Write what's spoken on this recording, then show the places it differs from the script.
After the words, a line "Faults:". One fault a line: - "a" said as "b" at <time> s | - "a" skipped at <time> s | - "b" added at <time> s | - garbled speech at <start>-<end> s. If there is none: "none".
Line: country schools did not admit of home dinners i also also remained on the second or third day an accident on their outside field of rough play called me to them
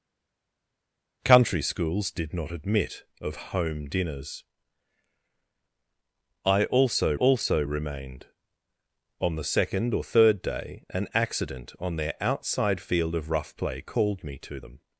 country schools did not admit of home dinners i also also remained on the second or third day an accident on their outside field of rough play called me to them
Faults:
none